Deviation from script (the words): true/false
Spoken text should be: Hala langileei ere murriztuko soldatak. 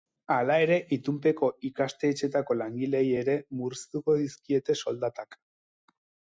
true